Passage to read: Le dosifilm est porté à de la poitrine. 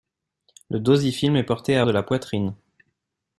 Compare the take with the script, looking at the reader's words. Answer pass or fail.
pass